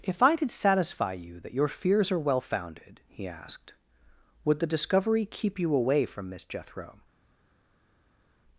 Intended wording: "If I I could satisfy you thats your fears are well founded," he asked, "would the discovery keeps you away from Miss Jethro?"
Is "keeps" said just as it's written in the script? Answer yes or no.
no